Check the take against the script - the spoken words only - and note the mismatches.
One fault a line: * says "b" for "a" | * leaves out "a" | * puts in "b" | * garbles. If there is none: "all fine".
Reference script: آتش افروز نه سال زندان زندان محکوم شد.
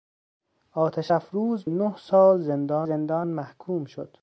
all fine